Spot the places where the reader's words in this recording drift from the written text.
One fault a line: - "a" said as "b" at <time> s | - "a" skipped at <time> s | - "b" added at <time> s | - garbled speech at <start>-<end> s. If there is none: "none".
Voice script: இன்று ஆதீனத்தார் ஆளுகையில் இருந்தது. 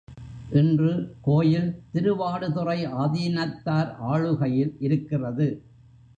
- "கோயில் திருவாடுதுறை" added at 1.2 s
- "இருந்தது" said as "இருக்கிறது" at 4.8 s